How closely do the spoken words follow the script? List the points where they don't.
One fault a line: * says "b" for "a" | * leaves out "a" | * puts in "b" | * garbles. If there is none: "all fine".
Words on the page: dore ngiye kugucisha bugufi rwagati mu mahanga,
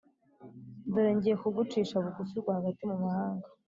all fine